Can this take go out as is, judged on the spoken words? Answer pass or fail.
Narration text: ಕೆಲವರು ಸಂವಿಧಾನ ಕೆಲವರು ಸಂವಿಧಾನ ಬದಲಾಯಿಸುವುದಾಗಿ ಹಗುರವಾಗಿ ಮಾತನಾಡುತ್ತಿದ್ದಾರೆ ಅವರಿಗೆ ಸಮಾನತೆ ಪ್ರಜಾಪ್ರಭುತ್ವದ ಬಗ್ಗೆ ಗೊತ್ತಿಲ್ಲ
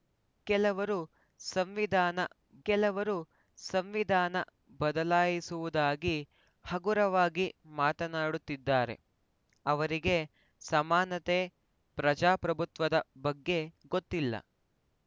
pass